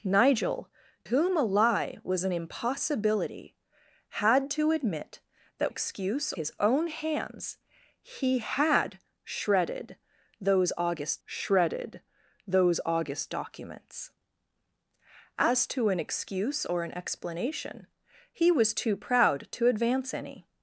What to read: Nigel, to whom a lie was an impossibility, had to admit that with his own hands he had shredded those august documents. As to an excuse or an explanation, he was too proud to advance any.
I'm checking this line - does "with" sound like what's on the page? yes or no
no